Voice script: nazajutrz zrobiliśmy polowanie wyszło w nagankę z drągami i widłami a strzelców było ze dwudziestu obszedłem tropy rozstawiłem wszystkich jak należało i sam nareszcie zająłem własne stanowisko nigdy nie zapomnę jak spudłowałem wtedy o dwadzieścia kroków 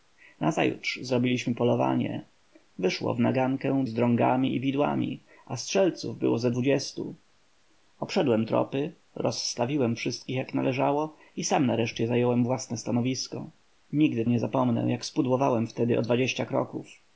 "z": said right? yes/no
yes